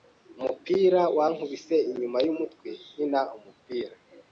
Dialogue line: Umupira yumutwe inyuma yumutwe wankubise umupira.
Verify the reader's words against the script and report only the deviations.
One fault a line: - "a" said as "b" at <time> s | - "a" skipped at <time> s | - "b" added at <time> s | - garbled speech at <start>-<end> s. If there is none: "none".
- "yumutwe" said as "wankubise" at 1.2 s
- "wankubise" said as "nkina" at 2.9 s